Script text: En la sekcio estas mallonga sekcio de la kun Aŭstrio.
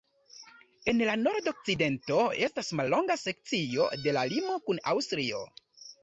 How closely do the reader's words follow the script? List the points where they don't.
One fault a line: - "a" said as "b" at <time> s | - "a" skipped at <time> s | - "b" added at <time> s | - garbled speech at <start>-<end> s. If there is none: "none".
- "sekcio" said as "nordokcidento" at 1.2 s
- "limo" added at 4.3 s